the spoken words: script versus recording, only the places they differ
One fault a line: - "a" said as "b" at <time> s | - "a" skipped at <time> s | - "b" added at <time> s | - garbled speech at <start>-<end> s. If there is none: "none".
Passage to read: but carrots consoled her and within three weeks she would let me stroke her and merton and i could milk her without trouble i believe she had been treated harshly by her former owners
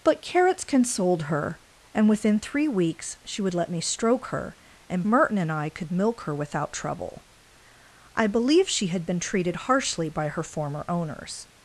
none